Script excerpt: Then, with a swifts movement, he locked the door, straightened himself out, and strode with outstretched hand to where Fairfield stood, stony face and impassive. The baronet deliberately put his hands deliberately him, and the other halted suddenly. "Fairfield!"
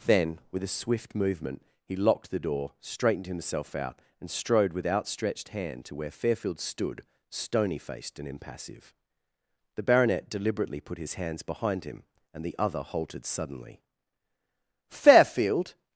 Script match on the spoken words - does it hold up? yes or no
no